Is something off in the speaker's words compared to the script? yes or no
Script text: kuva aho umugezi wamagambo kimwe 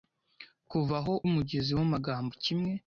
no